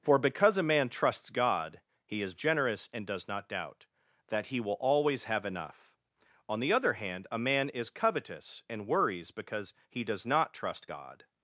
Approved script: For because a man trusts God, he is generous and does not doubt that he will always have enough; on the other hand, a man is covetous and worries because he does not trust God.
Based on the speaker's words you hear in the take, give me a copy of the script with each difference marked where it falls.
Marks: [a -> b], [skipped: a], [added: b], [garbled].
For because a man trusts God, he is generous and does not doubt that he will always have enough; on the other hand, a man is covetous and worries because he does not trust God.